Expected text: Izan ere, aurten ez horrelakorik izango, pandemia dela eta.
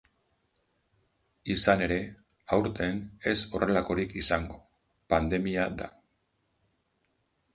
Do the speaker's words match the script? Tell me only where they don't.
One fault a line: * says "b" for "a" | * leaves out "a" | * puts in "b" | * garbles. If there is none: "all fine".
* leaves out "dela"